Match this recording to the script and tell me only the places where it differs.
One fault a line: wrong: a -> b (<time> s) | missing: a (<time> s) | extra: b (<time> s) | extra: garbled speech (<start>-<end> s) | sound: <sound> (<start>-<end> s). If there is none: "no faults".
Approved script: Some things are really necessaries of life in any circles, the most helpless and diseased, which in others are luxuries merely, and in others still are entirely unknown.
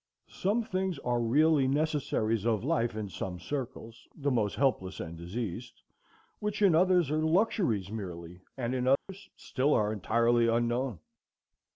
wrong: any -> some (3.1 s)
sound: dropout (9.0-9.1 s)